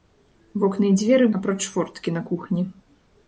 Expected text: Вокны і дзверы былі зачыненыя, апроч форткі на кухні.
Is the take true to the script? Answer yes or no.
no